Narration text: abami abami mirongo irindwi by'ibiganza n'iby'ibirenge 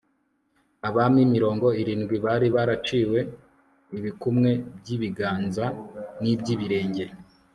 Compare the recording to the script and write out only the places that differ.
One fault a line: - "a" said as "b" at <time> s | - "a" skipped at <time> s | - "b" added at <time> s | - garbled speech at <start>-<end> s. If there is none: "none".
- "abami" skipped at 1.2 s
- "bari baraciwe ibikumwe" added at 2.2 s